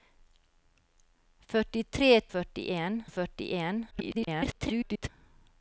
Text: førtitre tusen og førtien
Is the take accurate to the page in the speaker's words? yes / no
no